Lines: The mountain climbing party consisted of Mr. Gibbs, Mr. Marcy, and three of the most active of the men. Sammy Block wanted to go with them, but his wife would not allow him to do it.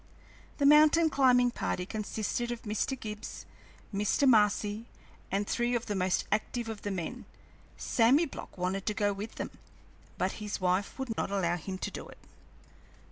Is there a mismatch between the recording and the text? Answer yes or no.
no